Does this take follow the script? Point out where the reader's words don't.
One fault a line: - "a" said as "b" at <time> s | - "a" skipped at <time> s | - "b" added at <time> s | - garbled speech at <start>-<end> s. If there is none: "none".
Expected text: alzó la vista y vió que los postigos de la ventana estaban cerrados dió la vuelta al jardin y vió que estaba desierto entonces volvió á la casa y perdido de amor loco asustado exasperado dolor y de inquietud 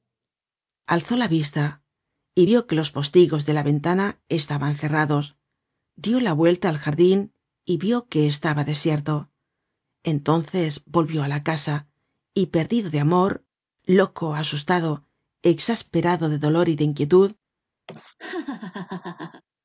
- "de" added at 16.3 s